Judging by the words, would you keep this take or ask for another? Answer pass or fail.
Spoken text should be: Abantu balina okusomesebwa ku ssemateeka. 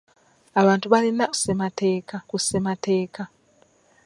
fail